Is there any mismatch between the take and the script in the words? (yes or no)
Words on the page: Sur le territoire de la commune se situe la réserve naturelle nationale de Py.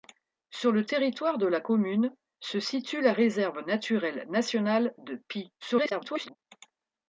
yes